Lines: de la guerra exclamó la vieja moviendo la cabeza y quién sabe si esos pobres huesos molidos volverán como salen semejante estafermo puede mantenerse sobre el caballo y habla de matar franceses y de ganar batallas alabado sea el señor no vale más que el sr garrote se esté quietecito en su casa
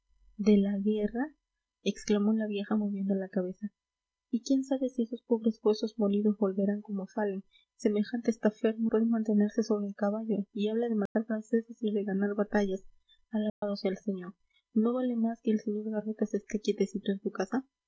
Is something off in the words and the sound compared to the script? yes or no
yes